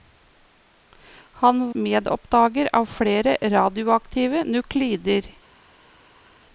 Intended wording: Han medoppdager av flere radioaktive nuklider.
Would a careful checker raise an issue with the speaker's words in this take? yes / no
no